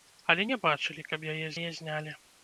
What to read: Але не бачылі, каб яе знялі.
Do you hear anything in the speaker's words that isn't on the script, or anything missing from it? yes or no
yes